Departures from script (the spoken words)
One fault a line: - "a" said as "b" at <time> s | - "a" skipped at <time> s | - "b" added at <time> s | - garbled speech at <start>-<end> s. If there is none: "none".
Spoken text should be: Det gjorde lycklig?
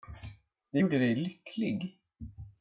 - "dig" added at 1.0 s